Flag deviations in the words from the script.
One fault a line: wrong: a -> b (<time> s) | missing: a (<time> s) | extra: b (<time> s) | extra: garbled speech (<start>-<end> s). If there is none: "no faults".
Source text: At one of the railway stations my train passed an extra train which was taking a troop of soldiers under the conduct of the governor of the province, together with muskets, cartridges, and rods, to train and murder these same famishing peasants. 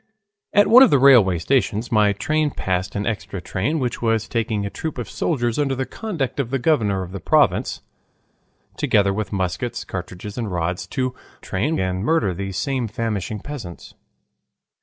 no faults